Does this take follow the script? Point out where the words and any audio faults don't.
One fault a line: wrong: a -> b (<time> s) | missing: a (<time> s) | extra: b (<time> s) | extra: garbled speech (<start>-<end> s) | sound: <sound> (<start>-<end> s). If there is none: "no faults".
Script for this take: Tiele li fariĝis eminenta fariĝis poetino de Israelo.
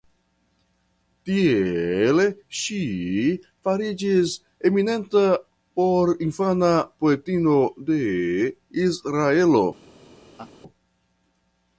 wrong: li -> ŝi (2.6 s)
wrong: fariĝis -> porinfana (5.8 s)
sound: laugh (10.4-10.5 s)